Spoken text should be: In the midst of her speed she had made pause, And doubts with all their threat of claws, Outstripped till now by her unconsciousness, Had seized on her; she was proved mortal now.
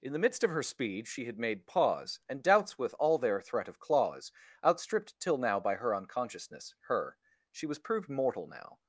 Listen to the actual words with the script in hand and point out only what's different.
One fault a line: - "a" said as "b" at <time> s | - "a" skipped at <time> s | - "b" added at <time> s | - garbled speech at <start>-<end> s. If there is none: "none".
- "Had seized on" skipped at 6.7 s